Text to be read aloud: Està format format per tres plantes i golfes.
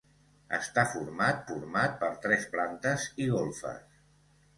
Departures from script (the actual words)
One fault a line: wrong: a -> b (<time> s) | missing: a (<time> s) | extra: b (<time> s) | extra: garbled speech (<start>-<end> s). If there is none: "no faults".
no faults